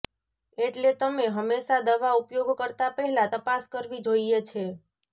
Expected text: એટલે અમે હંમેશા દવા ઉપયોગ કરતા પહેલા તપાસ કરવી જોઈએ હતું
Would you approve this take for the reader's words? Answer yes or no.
no